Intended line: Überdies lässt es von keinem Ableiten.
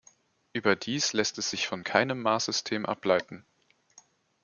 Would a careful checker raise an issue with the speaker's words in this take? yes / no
yes